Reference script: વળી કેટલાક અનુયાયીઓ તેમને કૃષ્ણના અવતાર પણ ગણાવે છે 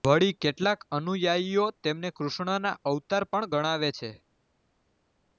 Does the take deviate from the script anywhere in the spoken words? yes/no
no